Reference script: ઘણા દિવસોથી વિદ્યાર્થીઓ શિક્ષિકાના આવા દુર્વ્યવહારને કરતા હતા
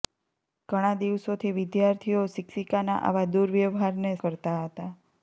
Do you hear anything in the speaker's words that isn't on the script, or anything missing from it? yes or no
no